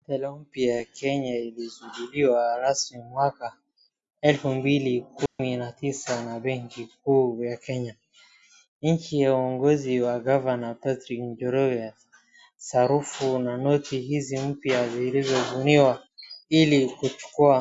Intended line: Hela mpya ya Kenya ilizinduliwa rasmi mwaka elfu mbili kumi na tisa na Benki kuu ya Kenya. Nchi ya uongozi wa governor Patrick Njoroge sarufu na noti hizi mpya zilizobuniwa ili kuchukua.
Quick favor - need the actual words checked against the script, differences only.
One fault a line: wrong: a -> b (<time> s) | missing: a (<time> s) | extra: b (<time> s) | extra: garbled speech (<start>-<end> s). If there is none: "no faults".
no faults